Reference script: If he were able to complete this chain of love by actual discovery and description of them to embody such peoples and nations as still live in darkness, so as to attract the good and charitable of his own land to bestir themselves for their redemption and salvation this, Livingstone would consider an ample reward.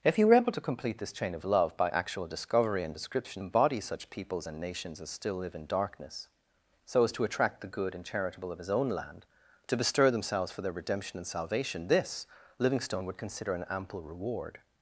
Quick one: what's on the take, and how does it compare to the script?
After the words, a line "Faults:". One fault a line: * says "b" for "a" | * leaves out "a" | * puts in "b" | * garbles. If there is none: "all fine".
If he were able to complete this chain of love by actual discovery and description embody such peoples and nations as still live in darkness, so as to attract the good and charitable of his own land to bestir themselves for their redemption and salvation this, Livingstone would consider an ample reward.
Faults:
* leaves out "of them to"